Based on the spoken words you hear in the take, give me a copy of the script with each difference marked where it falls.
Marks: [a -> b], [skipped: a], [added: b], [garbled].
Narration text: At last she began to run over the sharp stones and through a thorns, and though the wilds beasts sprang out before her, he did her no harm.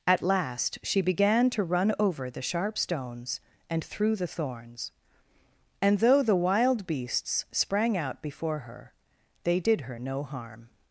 At last she began to run over the sharp stones and through [a -> the] thorns, and though the [wilds -> wild] beasts sprang out before her, [he -> they] did her no harm.